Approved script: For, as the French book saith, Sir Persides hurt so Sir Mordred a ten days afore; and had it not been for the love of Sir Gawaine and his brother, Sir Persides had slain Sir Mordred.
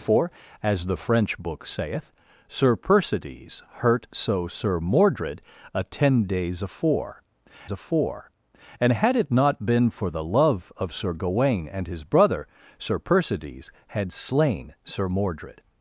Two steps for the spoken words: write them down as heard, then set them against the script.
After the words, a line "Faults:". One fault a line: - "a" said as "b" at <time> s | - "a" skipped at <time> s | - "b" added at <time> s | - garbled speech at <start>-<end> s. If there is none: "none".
For, as the French book saith, Sir Persides hurt so Sir Mordred a ten days afore afore; and had it not been for the love of Sir Gawaine and his brother, Sir Persides had slain Sir Mordred.
Faults:
- "afore" added at 7.7 s